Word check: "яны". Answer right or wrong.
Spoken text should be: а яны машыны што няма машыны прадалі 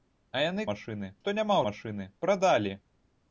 right